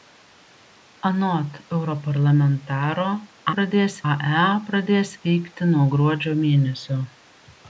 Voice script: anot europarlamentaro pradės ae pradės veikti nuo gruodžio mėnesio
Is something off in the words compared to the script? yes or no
no